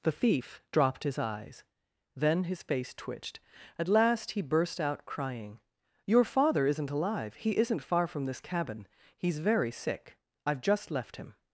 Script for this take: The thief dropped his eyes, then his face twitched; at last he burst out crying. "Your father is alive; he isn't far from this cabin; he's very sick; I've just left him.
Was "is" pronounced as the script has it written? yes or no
no